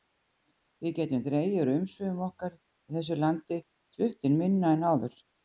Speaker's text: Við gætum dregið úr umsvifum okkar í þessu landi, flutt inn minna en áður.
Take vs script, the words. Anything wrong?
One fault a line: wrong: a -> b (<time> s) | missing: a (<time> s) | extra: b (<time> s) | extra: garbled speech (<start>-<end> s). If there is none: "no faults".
no faults